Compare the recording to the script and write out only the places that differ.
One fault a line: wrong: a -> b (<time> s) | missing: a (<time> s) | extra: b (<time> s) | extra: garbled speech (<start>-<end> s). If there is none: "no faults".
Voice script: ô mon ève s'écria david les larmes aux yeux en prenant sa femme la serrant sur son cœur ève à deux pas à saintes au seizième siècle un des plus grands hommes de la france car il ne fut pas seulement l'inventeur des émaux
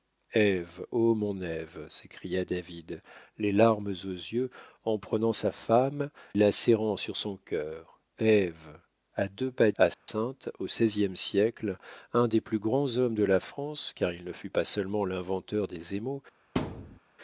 no faults